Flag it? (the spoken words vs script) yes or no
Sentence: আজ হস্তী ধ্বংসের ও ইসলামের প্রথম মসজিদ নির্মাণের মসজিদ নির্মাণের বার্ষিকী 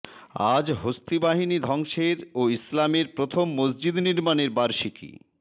yes